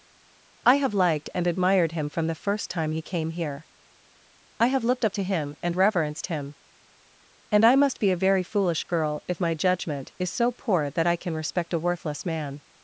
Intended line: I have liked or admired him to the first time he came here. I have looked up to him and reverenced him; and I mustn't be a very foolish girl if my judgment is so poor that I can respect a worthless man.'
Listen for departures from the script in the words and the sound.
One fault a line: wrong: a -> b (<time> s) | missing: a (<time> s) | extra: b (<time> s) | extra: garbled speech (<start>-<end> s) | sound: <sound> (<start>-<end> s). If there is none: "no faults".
wrong: or -> and (1.3 s)
wrong: to -> from (2.1 s)
wrong: mustn't -> must (7.8 s)